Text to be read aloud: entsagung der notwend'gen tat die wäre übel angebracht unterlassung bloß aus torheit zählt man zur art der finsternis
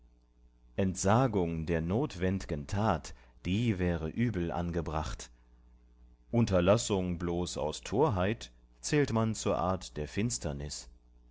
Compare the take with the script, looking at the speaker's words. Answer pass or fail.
pass